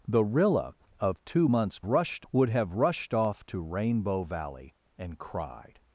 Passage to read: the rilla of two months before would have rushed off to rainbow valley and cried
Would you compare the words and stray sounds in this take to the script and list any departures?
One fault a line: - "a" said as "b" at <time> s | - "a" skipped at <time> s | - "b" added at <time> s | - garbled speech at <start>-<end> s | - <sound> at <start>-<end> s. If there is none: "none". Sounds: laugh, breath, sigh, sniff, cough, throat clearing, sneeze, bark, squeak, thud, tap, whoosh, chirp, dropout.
- "before" said as "rushed" at 1.9 s